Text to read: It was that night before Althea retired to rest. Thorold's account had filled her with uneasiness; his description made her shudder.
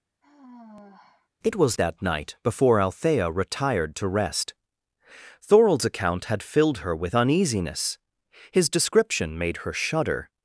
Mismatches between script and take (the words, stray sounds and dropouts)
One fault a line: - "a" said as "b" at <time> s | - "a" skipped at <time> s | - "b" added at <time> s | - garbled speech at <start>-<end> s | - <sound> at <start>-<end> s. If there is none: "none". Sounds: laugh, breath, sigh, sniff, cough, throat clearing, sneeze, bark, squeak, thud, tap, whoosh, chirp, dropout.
- sigh at 0.2-1.3 s